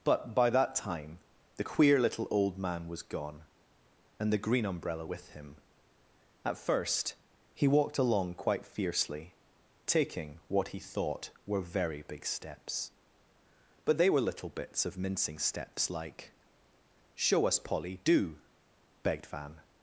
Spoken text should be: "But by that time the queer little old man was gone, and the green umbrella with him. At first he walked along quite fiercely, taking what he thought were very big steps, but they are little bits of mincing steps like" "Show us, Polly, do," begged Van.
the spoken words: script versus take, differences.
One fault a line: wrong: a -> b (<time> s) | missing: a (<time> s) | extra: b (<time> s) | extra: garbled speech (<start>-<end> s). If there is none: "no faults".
wrong: are -> were (14.1 s)